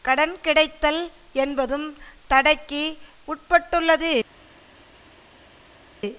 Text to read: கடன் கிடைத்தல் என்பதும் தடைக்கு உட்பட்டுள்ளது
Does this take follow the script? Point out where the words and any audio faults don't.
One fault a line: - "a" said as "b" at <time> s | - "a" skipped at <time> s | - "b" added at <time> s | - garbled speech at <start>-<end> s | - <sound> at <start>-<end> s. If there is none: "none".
none